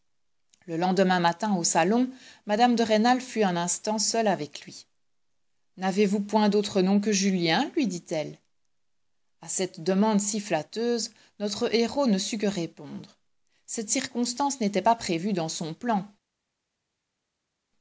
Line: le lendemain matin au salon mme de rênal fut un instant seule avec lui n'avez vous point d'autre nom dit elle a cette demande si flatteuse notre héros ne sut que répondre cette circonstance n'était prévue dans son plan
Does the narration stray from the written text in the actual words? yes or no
yes